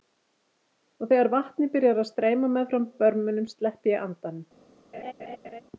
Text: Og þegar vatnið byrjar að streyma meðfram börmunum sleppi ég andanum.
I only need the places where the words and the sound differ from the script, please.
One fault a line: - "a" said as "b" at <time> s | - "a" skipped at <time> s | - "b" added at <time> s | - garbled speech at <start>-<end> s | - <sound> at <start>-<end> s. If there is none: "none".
- laugh at 4.9-5.6 s